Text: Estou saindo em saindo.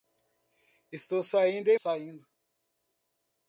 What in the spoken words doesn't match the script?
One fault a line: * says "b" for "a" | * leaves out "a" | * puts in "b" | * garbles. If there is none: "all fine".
all fine